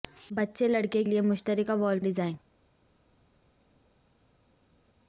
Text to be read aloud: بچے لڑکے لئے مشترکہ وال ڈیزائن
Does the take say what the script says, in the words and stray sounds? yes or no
yes